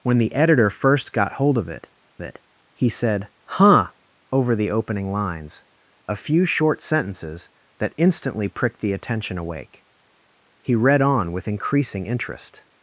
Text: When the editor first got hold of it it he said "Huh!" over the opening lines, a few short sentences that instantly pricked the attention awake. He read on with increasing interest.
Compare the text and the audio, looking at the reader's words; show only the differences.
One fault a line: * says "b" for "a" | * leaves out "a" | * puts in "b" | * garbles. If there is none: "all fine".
all fine